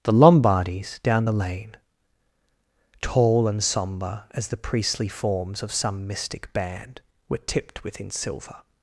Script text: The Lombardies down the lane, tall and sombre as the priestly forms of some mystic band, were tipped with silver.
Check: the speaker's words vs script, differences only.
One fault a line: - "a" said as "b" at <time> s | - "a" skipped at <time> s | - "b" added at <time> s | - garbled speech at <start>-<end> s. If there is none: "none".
- "with" said as "within" at 7.8 s